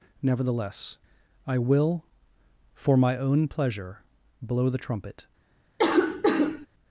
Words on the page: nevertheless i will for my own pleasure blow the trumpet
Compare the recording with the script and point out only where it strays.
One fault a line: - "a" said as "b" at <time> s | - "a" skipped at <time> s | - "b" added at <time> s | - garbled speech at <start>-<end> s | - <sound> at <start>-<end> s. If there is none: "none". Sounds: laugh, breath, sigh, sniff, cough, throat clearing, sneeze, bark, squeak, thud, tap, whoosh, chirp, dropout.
- cough at 5.8-6.7 s